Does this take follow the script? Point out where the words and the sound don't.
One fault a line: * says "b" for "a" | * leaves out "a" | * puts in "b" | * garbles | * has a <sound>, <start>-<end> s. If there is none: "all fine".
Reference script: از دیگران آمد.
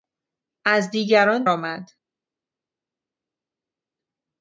all fine